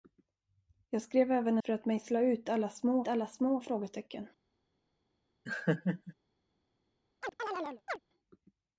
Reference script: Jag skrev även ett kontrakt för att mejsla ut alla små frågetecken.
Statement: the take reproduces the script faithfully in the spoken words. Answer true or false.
false